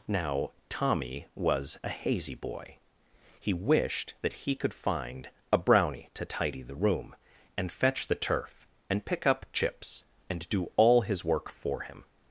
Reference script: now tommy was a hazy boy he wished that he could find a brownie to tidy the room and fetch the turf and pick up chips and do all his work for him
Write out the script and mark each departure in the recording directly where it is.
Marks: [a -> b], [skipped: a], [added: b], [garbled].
now tommy was a hazy boy he wished that he could find a brownie to tidy the room and fetch the turf and pick up chips and do all his work for him